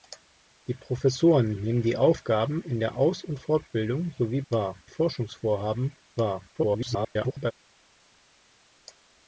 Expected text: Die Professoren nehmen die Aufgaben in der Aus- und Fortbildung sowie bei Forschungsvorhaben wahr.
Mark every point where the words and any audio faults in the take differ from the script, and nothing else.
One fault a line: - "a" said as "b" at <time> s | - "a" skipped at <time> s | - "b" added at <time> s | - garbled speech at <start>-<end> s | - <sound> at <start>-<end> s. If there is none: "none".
- "bei" said as "wahr" at 4.5 s
- garbled speech at 6.5-7.5 s